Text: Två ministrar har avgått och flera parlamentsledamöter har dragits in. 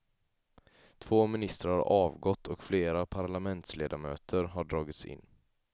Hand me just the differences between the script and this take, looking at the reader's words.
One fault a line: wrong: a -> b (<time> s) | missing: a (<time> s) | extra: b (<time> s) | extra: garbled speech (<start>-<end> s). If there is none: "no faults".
no faults